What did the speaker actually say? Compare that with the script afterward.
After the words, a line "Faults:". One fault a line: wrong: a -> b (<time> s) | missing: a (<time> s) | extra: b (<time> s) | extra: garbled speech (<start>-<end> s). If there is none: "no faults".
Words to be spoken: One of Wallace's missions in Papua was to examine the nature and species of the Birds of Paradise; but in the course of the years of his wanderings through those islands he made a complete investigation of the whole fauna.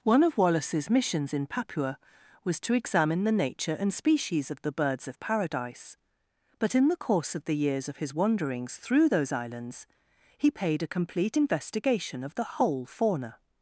One of Wallace's missions in Papua was to examine the nature and species of the Birds of Paradise; but in the course of the years of his wanderings through those islands he paid a complete investigation of the whole fauna.
Faults:
wrong: made -> paid (10.5 s)